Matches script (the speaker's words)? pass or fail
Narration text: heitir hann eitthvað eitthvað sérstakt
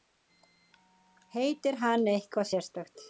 fail